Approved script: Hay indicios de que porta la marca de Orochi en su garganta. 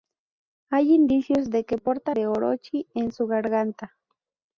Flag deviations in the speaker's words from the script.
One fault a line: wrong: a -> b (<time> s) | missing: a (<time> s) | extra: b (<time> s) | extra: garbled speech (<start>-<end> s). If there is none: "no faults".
missing: la marca (2.1 s)